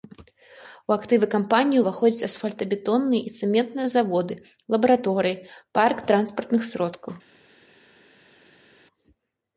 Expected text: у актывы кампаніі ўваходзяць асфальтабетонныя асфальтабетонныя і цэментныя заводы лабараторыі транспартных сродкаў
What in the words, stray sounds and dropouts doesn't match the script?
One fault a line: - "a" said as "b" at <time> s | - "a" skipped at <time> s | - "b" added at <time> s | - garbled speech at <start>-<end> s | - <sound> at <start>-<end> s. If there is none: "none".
- "асфальтабетонныя" skipped at 3.2 s
- "парк" added at 5.8 s